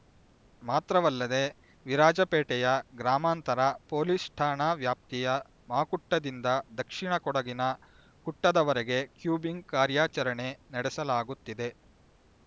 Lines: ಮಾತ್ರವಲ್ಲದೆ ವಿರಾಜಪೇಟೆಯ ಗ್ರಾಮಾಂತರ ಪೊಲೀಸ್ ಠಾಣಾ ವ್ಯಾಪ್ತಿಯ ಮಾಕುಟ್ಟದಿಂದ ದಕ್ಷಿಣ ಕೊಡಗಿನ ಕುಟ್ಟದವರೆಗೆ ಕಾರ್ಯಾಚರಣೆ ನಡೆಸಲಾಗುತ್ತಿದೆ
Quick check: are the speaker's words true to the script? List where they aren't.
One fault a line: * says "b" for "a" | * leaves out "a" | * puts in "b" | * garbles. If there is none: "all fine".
* puts in "ಕೂಂಬಿಂಗ್"